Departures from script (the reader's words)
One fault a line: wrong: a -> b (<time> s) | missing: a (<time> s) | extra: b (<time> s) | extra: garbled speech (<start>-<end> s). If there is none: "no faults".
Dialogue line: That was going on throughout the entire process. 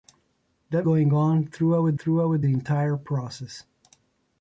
missing: was (0.9 s)
extra: throughout (1.9 s)